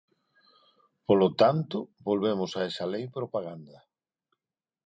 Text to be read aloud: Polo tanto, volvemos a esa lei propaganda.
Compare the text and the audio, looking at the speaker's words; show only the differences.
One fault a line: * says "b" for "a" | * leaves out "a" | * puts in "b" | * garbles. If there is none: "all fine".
all fine